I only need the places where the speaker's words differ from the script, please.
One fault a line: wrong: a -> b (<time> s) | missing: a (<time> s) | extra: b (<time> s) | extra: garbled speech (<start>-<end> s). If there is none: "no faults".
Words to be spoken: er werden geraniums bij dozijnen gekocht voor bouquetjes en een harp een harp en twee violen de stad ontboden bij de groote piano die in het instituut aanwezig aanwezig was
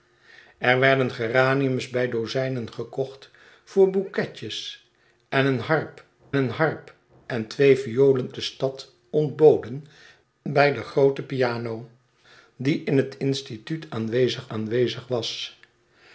no faults